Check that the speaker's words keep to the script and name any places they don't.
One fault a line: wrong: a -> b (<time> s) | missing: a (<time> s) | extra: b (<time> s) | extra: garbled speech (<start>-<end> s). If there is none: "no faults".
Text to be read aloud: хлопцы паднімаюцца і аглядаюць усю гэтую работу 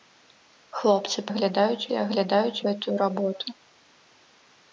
wrong: паднімаюцца -> аглядаюць (1.3 s)
missing: усю (2.6 s)